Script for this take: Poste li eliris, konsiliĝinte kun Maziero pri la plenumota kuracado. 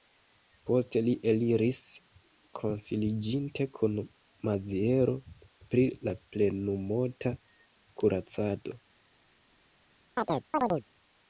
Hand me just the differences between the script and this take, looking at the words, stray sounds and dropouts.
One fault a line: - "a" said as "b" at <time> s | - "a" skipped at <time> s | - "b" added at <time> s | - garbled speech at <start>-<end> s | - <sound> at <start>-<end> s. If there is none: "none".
- chirp at 10.2-10.9 s